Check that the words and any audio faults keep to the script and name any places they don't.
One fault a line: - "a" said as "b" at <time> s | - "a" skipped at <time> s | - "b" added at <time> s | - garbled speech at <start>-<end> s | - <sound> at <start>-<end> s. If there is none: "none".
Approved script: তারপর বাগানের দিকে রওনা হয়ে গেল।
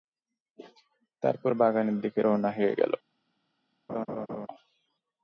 - laugh at 3.9-4.5 s